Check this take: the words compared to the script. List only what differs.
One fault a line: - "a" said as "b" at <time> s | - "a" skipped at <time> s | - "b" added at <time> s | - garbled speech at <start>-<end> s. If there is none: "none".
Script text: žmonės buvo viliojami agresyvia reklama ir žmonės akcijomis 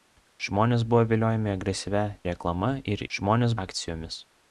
none